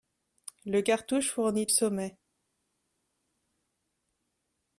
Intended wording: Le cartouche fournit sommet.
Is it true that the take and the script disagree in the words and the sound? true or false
false